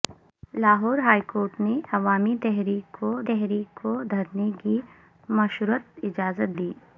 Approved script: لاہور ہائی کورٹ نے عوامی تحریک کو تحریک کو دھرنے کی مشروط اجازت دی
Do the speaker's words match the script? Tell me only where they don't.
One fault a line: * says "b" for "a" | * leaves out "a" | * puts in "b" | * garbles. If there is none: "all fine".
all fine